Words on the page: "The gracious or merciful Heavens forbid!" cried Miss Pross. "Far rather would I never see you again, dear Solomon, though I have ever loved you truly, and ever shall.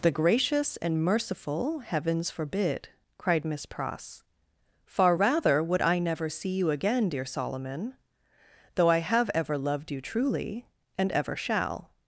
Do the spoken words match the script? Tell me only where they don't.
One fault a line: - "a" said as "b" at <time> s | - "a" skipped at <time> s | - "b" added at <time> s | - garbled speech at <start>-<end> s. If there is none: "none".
- "or" said as "and" at 0.8 s